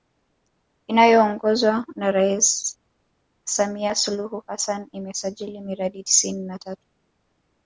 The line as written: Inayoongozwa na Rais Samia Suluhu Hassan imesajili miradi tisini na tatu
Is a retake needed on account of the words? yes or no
no